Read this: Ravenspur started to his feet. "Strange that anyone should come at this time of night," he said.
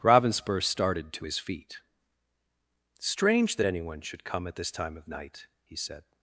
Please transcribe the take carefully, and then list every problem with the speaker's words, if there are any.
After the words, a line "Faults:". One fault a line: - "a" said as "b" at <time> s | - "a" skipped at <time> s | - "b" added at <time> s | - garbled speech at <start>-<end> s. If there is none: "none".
Ravenspur started to his feet. "Strange that anyone should come at this time of night," he said.
Faults:
none